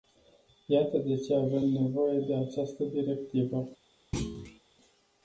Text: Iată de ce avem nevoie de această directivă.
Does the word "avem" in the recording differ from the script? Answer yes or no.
no